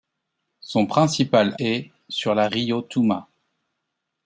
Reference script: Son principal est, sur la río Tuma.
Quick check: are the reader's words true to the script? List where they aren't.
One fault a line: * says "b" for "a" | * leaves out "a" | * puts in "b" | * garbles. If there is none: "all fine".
all fine